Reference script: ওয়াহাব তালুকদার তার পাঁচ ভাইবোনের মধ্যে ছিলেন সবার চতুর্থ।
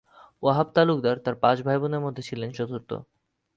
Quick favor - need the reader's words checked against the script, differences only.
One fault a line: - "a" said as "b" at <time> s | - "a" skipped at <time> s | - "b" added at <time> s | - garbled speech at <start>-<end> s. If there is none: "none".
- "সবার" skipped at 2.5 s